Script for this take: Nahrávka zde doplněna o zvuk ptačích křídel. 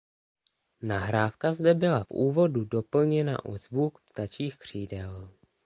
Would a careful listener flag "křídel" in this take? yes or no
no